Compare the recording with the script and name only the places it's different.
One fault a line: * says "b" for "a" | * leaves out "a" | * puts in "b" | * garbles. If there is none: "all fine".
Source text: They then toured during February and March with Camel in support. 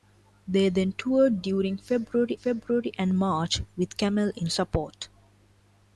* puts in "February"